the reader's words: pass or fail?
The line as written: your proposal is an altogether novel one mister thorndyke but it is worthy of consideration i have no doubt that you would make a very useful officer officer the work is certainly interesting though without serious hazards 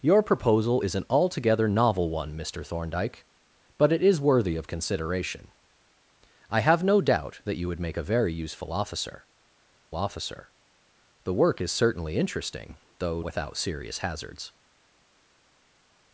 pass